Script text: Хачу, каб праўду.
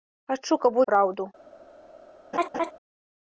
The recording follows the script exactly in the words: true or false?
true